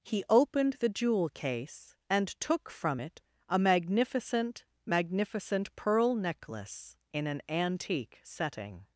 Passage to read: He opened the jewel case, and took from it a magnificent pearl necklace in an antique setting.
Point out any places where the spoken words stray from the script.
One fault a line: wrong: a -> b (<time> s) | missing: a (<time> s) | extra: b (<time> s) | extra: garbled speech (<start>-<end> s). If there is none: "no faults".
extra: magnificent (4.8 s)